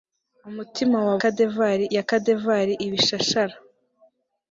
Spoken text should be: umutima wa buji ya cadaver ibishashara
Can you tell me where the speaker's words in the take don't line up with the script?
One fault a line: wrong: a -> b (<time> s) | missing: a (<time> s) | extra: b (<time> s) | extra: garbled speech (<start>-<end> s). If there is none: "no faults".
wrong: buji -> cadaver (1.2 s)